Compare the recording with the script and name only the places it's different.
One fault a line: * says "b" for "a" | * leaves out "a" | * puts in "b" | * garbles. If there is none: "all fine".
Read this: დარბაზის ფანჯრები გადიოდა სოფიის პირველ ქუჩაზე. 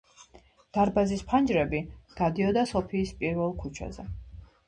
all fine